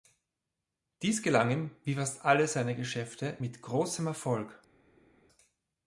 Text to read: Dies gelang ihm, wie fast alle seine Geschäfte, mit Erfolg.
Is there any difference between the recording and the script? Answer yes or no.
yes